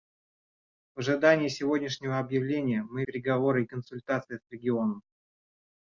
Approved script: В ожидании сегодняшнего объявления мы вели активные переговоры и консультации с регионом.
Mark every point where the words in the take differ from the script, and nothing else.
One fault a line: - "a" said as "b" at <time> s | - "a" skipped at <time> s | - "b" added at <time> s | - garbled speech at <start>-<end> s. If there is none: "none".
- "вели активные" skipped at 3.0 s